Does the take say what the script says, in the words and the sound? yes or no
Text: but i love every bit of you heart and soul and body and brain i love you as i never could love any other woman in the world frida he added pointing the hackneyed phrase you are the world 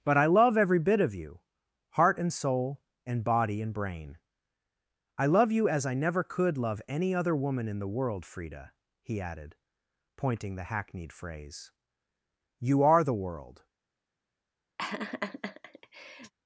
no